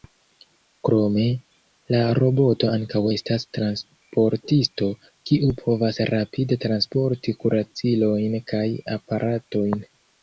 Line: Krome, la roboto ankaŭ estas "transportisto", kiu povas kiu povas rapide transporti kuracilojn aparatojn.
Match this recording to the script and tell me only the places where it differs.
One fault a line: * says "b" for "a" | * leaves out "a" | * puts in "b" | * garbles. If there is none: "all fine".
* leaves out "kiu povas"
* puts in "kaj"